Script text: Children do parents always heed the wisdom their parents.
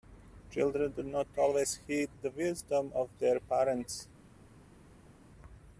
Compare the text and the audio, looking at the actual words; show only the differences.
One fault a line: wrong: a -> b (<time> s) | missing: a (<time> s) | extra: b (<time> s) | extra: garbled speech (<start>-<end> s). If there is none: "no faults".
wrong: parents -> not (1.0 s)
extra: of (2.9 s)